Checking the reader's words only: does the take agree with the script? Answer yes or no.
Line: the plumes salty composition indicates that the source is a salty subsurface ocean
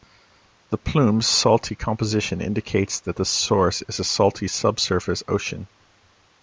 yes